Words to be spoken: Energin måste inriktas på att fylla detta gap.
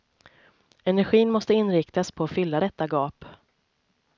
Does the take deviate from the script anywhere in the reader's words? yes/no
no